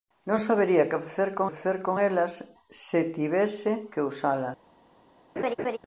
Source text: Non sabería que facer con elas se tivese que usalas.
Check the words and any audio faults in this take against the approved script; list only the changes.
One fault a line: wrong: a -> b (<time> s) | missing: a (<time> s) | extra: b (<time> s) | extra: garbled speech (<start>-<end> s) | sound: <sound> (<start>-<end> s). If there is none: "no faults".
extra: facer con (1.5 s)
sound: laugh (5.4-5.8 s)